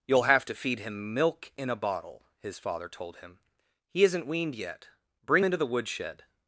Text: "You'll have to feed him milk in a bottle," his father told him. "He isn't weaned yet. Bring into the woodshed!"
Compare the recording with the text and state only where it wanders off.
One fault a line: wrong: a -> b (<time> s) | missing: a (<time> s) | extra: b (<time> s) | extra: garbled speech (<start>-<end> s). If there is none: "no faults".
no faults